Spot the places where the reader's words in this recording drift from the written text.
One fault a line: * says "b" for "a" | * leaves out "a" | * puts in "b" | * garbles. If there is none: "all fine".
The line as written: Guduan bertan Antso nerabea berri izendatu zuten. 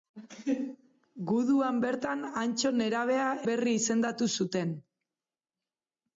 all fine